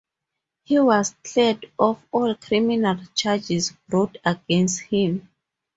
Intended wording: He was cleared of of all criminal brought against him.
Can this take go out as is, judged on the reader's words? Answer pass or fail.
fail